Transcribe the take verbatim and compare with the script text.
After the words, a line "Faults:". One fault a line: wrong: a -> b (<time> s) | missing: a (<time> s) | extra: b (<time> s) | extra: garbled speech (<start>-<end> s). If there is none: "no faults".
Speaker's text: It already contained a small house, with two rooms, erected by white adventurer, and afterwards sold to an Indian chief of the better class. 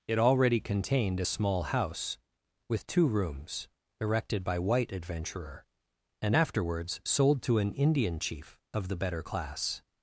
It already contained a small house, with two rooms, erected by white adventurer, and afterwards sold to an Indian chief of the better class.
Faults:
no faults